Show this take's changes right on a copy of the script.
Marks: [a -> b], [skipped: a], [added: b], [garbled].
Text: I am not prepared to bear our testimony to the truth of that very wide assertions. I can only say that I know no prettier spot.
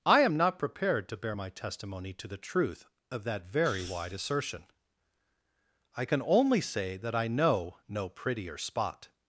I am not prepared to bear [our -> my] testimony to the truth of that very wide [assertions. -> assertion] I can only say that I know no prettier spot.